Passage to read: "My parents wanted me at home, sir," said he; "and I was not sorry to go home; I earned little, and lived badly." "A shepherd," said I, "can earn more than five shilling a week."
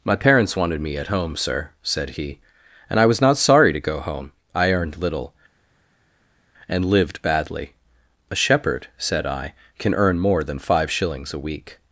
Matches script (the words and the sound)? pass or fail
fail